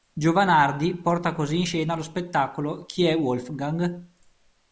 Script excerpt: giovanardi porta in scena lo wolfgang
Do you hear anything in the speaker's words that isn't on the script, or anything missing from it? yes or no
yes